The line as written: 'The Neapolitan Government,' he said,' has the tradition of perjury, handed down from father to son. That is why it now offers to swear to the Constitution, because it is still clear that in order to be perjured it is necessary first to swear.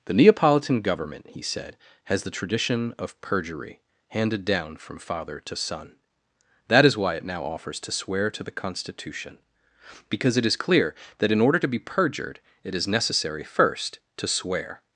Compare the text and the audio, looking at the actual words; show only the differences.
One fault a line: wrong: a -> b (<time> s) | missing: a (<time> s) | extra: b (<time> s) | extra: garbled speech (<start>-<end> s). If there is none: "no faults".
missing: still (10.6 s)